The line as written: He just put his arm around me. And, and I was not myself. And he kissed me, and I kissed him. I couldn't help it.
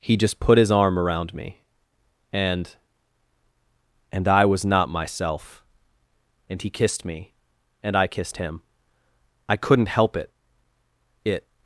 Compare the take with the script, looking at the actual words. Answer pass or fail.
fail